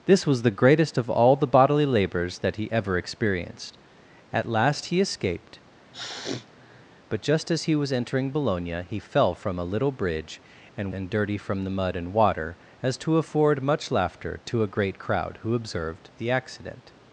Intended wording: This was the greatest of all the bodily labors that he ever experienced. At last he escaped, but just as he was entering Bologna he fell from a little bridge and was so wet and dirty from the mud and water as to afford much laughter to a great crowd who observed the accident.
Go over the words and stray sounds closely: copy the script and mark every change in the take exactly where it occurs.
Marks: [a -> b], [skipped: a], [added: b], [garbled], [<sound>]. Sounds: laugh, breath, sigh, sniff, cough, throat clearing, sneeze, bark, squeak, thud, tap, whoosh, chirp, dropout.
This was the greatest of all the bodily labors that he ever experienced. At last he escaped, [sniff] but just as he was entering Bologna he fell from a little bridge and [skipped: was so wet] and dirty from the mud and water as to afford much laughter to a great crowd who observed the accident.